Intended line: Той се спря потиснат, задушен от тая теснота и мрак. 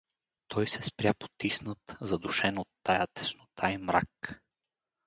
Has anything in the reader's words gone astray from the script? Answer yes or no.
no